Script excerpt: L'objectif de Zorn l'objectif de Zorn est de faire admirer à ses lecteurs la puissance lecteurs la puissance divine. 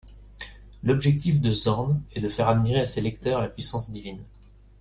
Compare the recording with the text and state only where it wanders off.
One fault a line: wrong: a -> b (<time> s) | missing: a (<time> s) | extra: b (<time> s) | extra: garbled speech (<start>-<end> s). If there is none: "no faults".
missing: l'objectif de Zorn (2.0 s)
missing: lecteurs la puissance (3.9 s)